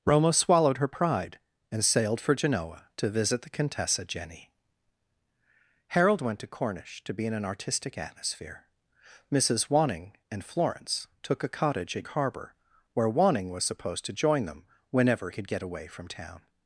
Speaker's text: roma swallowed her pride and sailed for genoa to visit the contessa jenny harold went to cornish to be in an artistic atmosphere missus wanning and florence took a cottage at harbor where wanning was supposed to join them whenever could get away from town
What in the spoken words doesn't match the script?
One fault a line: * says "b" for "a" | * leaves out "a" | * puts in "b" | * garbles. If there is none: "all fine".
all fine